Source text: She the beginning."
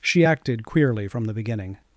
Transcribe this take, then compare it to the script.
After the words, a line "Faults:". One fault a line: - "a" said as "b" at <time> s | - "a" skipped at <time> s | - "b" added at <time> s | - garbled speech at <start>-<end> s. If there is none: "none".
She acted queerly from the beginning."
Faults:
- "acted queerly from" added at 0.2 s